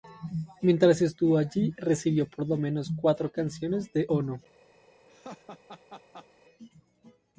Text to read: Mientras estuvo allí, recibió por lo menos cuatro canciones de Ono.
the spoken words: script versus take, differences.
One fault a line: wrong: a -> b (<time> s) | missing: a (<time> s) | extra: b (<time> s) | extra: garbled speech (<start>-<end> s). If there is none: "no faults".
no faults